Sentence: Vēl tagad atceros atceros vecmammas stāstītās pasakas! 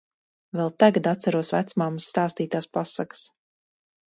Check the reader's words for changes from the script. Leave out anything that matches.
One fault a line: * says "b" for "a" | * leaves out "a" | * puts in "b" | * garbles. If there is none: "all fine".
* leaves out "atceros"